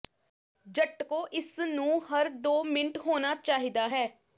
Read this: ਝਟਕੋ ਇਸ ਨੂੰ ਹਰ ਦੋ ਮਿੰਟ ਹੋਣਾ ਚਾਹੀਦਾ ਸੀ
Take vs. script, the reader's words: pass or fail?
fail